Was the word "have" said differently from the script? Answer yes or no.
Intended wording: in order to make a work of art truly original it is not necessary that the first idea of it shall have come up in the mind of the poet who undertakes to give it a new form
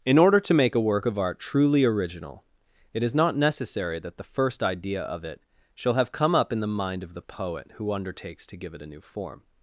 no